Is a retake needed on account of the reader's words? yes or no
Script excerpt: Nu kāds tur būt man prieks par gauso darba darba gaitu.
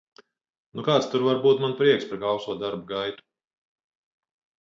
yes